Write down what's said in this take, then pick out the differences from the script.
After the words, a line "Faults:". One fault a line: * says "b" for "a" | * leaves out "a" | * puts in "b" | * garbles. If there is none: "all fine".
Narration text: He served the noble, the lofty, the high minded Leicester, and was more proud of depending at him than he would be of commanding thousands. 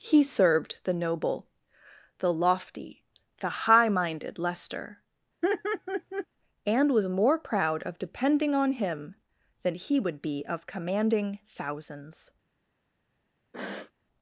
He served the noble, the lofty, the high minded Leicester, and was more proud of depending on him than he would be of commanding thousands.
Faults:
* says "on" for "at"